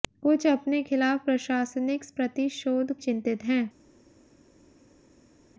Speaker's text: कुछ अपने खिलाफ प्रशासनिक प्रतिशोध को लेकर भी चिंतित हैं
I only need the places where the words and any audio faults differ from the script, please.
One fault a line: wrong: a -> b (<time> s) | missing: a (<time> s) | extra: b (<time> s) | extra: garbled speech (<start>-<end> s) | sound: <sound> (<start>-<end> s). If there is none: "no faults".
missing: को लेकर भी (2.9 s)